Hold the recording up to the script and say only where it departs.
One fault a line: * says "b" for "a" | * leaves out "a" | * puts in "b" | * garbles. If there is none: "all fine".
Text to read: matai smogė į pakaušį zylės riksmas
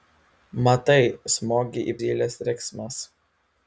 * leaves out "pakaušį"